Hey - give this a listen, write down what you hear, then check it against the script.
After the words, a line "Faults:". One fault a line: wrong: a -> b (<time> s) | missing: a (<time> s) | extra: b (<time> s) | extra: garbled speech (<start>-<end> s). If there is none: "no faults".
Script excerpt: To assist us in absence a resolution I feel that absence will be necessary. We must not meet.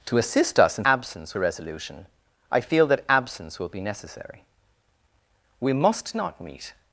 To assist us in absence a resolution I feel that absence will be necessary. We must not meet.
Faults:
no faults